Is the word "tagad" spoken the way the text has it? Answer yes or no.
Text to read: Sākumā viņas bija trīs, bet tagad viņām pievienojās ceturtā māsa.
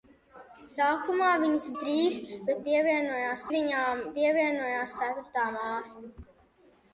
no